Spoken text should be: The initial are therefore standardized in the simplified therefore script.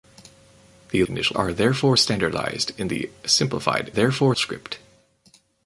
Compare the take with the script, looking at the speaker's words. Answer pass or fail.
pass